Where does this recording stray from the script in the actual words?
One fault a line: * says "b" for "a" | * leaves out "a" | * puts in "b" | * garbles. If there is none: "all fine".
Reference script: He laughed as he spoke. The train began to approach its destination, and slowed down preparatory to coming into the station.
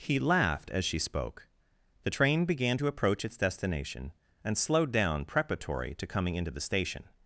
* says "she" for "he"